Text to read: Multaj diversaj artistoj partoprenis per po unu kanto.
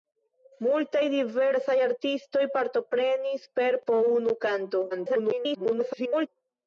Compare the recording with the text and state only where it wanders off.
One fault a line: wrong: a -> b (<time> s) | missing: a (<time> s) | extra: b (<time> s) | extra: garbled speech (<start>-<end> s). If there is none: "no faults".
extra: garbled speech (4.9-6.3 s)